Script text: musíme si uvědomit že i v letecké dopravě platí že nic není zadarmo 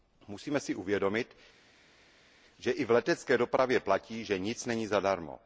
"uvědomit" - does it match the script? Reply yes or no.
yes